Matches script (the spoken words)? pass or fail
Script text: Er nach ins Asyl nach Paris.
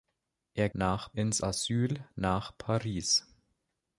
pass